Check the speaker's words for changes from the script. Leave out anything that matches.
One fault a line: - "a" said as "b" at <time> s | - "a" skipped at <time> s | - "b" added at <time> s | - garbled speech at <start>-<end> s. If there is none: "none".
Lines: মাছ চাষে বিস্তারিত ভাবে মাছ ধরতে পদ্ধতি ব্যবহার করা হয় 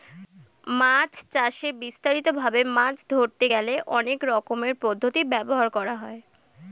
- "গেলে অনেক রকমের" added at 3.5 s